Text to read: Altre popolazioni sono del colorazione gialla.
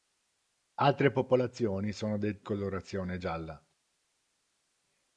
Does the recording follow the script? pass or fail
pass